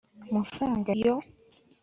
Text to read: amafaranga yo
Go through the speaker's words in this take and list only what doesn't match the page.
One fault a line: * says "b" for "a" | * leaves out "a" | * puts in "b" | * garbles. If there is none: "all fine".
all fine